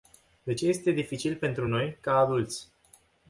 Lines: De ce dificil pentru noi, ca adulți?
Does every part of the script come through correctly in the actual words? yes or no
no